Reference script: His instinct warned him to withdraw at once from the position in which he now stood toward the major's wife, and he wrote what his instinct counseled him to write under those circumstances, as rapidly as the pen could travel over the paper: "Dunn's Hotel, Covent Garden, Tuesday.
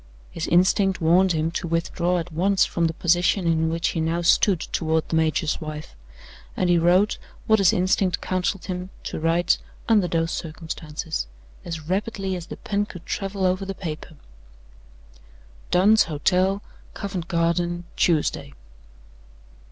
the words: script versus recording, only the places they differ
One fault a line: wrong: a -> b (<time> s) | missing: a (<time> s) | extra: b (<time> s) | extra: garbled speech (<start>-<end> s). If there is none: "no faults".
no faults